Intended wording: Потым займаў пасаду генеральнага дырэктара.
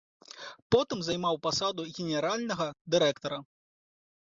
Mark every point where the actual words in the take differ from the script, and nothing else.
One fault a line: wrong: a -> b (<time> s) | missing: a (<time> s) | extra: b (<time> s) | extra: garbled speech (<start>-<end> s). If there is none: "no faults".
no faults